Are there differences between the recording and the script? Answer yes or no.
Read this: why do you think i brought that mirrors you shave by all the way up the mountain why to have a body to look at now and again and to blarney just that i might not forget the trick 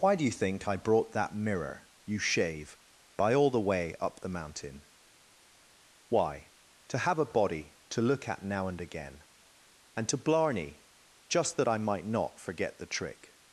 yes